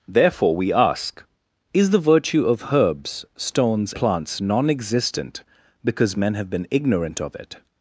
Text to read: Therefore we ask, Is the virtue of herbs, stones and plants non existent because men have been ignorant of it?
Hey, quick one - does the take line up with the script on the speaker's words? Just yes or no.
no